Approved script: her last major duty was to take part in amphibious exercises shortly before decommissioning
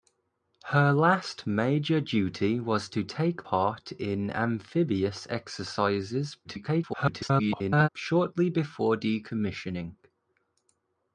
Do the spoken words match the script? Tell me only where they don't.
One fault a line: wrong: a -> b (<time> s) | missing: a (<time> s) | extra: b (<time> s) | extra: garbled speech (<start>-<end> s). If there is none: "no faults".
extra: garbled speech (6.4-7.9 s)